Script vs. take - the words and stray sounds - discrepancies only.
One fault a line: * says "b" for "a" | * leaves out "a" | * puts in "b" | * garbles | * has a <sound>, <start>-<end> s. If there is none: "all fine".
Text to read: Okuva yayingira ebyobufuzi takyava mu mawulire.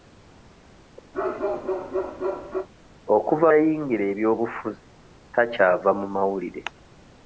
* has a bark, 1.1-2.7 s